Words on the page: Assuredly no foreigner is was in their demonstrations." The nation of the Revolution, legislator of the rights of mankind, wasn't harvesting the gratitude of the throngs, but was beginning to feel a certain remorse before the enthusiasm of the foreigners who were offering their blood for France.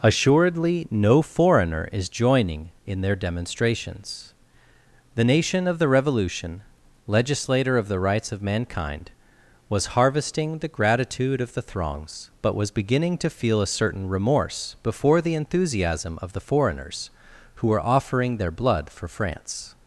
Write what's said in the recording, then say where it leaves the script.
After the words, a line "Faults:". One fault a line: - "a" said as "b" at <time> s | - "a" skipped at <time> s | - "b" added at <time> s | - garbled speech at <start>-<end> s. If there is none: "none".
Assuredly no foreigner is joining in their demonstrations." The nation of the Revolution, legislator of the rights of mankind, was harvesting the gratitude of the throngs, but was beginning to feel a certain remorse before the enthusiasm of the foreigners who were offering their blood for France.
Faults:
- "was" said as "joining" at 2.1 s
- "wasn't" said as "was" at 9.7 s